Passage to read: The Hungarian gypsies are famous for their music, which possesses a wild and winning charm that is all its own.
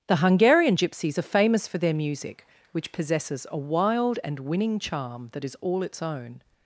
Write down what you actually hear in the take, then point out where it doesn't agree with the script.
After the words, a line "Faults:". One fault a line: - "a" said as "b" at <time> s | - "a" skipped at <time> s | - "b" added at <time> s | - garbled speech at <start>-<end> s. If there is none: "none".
The Hungarian gypsies are famous for their music, which possesses a wild and winning charm that is all its own.
Faults:
none